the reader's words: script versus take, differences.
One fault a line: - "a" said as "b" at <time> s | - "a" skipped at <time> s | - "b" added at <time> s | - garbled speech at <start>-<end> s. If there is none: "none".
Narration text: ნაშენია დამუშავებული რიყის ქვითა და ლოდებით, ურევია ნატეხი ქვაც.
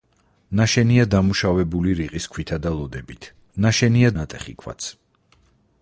- "ურევია" said as "ნაშენია" at 3.6 s